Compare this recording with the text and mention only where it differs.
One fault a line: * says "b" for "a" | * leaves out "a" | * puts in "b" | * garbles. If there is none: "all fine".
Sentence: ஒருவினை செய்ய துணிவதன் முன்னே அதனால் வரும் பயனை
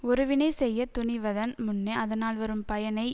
all fine